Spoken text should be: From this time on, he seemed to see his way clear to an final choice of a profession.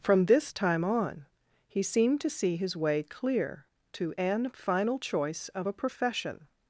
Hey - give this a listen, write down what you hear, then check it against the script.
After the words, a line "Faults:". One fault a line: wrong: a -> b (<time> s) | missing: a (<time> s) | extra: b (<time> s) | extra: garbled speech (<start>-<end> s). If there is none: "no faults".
From this time on, he seemed to see his way clear to an final choice of a profession.
Faults:
no faults